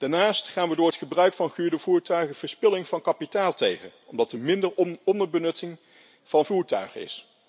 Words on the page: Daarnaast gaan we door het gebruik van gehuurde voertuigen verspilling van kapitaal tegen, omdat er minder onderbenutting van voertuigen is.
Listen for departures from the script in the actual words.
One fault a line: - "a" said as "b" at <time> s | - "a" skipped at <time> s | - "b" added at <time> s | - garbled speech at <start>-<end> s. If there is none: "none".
none